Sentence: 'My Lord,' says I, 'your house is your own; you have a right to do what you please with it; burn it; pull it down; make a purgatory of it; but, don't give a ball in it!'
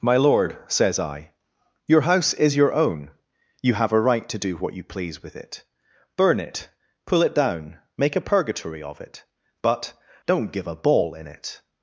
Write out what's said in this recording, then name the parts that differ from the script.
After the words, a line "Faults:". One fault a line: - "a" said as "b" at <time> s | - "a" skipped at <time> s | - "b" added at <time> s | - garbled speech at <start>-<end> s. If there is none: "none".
'My Lord,' says I, 'your house is your own; you have a right to do what you please with it; burn it; pull it down; make a purgatory of it; but, don't give a ball in it!'
Faults:
none